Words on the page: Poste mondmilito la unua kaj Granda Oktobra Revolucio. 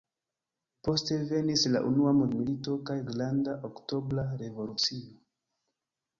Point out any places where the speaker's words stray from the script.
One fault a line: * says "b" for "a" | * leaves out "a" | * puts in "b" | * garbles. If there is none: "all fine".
* says "venis" for "mondmilito"
* puts in "mondmilito"